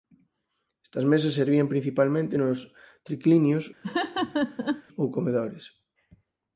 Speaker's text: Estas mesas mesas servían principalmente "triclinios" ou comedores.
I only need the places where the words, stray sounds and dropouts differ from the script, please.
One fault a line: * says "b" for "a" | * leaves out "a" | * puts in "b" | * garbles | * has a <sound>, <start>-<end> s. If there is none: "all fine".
* leaves out "mesas"
* puts in "nos"
* has a laugh, 3.8-4.8 s